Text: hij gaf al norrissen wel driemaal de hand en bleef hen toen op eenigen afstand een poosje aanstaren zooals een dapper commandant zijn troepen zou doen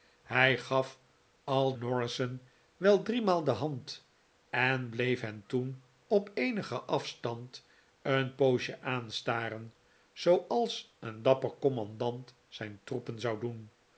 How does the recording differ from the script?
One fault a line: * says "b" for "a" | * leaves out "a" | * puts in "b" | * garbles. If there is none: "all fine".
all fine